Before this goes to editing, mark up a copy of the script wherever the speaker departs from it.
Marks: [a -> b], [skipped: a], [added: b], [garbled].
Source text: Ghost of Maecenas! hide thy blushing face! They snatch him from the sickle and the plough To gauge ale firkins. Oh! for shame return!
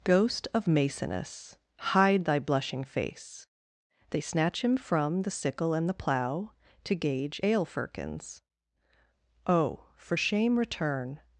Ghost of Maecenas! hide thy blushing face! They snatch him from the sickle and the plough To gauge ale firkins. Oh! for shame return!